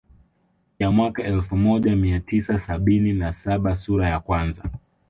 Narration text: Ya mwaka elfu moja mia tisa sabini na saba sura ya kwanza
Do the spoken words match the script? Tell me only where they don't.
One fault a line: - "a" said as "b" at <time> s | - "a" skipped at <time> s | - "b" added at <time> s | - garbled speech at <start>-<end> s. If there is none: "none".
none